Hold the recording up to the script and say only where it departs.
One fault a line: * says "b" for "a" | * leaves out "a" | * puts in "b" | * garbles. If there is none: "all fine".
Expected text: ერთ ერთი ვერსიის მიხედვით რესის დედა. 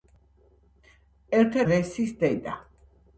* leaves out "ერთი ვერსიის მიხედვით"